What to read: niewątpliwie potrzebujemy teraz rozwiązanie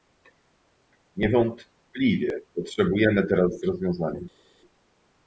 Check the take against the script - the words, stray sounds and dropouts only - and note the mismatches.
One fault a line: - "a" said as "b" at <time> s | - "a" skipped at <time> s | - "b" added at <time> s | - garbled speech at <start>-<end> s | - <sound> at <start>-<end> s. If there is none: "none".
none